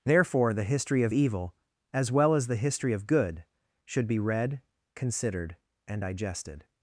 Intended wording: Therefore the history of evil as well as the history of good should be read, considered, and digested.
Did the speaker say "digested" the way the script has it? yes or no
yes